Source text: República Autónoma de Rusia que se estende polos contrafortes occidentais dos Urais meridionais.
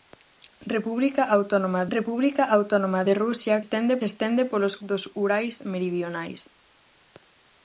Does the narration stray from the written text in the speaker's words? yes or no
yes